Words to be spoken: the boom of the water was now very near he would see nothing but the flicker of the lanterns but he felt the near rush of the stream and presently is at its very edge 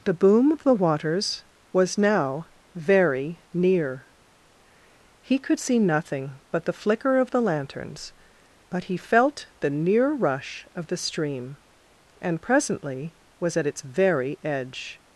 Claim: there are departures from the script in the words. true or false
true